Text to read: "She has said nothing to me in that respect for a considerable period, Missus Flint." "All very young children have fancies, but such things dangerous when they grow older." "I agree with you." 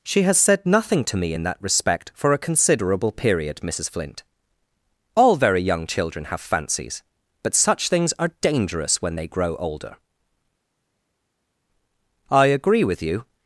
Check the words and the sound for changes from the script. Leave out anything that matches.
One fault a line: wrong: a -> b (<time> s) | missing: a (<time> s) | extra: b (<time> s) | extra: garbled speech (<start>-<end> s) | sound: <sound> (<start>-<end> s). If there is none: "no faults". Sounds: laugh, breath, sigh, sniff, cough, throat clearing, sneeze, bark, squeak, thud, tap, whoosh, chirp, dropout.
extra: are (8.2 s)